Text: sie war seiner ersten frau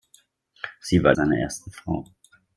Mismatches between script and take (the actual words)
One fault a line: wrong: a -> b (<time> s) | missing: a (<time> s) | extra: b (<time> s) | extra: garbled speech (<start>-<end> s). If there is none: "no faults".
no faults